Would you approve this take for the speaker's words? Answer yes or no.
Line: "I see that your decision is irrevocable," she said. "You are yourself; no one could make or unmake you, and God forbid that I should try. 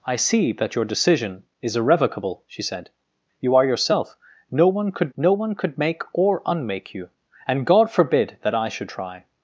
no